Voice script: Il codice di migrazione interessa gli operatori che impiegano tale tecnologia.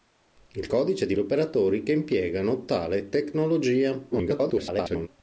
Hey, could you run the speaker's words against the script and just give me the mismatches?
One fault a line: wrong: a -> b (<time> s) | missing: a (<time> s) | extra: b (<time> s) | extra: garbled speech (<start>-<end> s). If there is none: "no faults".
missing: migrazione interessa (1.1 s)
extra: garbled speech (4.1-5.1 s)